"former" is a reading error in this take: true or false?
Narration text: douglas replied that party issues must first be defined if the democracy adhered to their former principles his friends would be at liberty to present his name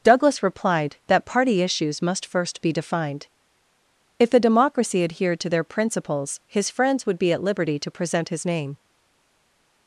true